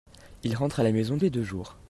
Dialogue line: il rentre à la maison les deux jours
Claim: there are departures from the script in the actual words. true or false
false